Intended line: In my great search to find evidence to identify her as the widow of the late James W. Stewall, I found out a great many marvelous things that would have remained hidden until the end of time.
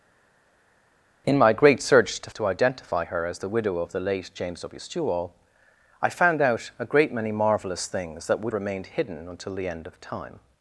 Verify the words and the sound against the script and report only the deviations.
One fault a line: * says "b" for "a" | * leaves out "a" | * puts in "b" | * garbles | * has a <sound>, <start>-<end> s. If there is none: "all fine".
* leaves out "find evidence"
* leaves out "have"